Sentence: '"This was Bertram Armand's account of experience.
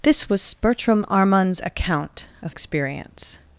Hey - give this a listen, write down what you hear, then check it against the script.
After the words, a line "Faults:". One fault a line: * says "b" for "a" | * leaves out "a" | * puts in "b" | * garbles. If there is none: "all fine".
'"This was Bertram Armand's account of experience.
Faults:
all fine